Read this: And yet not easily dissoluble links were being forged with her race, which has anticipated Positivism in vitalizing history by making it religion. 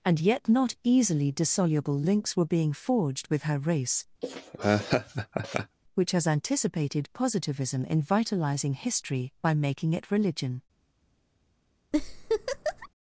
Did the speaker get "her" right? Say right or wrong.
right